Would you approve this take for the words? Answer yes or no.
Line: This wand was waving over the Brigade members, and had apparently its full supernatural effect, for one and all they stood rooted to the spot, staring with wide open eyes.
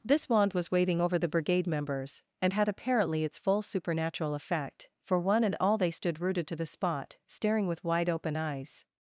yes